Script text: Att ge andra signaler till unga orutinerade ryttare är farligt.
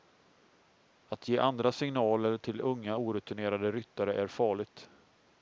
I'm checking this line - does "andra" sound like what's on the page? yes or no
yes